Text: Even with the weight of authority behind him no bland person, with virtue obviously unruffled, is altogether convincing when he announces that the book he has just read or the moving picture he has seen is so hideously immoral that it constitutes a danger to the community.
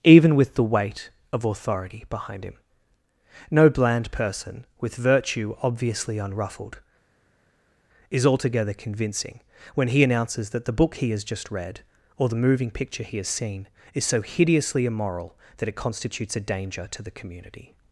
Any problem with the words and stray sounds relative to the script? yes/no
no